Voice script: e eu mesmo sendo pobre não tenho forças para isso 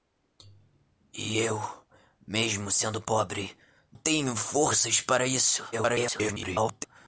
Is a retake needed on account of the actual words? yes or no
yes